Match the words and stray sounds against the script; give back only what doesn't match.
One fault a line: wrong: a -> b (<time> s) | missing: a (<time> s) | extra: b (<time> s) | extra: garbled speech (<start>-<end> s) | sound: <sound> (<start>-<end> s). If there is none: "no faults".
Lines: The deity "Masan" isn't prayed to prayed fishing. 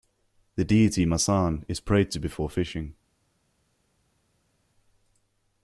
wrong: isn't -> is (1.7 s)
wrong: prayed -> before (2.2 s)